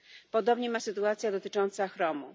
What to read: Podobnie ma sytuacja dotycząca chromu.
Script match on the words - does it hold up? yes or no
yes